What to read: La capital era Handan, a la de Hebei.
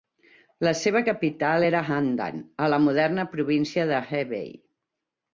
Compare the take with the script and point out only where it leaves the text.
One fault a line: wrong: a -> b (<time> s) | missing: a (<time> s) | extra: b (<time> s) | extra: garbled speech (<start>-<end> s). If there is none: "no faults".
extra: seva (0.8 s)
extra: moderna província (2.9 s)